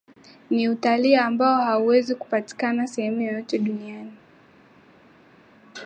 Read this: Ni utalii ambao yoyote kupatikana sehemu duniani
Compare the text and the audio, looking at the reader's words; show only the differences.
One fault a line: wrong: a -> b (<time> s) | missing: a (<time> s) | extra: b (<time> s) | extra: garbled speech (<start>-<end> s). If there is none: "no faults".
wrong: yoyote -> hauwezi (1.6 s)
extra: yoyote (3.2 s)